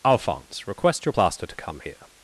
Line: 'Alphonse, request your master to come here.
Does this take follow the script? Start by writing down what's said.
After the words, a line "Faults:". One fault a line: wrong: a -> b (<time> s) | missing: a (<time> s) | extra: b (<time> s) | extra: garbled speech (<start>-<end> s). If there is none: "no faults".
'Alphonse, request your plaster to come here.
Faults:
wrong: master -> plaster (1.1 s)